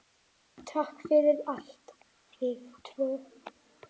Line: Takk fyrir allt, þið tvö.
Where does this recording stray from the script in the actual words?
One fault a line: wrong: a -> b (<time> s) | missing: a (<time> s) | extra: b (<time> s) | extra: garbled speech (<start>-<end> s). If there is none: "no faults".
no faults